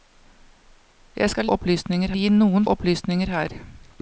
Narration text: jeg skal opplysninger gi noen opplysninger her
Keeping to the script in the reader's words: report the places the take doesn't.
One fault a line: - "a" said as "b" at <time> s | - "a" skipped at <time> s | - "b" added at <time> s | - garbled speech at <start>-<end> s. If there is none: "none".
none